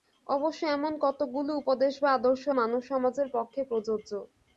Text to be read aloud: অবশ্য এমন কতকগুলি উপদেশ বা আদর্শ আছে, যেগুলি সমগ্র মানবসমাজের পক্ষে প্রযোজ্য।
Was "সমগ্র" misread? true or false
true